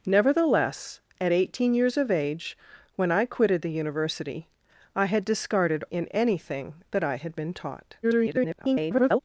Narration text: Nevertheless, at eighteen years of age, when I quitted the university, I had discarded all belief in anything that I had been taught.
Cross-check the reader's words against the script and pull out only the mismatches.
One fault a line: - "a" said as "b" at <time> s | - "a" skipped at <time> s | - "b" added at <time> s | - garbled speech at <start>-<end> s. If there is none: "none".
- "all belief" skipped at 5.8 s
- garbled speech at 8.0-9.2 s